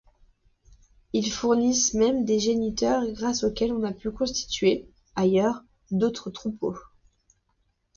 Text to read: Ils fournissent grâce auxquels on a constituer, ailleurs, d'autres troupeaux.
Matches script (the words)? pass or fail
fail